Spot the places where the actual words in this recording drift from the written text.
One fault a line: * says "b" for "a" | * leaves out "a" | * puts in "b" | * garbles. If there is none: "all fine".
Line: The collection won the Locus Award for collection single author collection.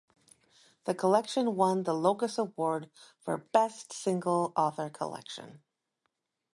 * says "best" for "collection"